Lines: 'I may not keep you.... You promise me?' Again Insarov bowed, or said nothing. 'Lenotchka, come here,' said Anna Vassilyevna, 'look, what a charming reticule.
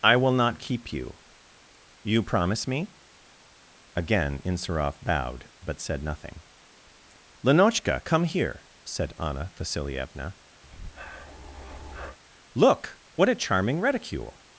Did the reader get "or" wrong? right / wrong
wrong